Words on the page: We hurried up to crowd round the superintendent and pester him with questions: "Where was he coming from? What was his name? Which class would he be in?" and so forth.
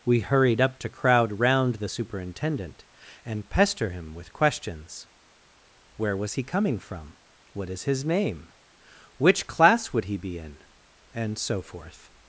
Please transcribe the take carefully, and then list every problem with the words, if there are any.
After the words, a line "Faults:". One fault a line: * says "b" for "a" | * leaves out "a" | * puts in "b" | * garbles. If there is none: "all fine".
We hurried up to crowd round the superintendent and pester him with questions: "Where was he coming from? What is his name? Which class would he be in?" and so forth.
Faults:
* says "is" for "was"